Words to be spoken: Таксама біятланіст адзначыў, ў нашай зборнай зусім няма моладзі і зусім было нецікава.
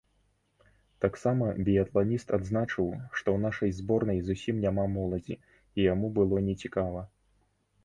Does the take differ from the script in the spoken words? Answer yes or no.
yes